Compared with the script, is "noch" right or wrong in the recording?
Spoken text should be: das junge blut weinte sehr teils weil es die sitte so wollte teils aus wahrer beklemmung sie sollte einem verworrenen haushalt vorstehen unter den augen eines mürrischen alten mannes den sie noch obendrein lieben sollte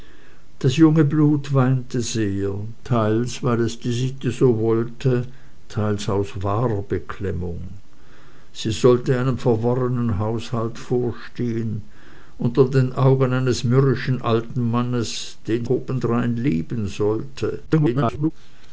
wrong